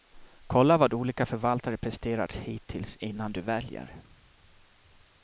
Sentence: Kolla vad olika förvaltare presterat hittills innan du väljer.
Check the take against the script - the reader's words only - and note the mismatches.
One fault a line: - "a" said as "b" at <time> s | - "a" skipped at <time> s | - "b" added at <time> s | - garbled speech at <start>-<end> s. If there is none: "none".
none